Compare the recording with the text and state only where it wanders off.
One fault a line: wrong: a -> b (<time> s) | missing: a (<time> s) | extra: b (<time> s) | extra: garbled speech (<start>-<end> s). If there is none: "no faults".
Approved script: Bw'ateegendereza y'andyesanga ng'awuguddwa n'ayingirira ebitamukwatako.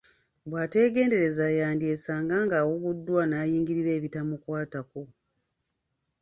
no faults